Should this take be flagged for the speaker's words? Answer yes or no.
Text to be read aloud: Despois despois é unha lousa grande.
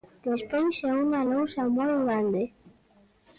yes